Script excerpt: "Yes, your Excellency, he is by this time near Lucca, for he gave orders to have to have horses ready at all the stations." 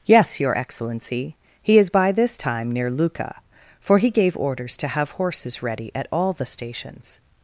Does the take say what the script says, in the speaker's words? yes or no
no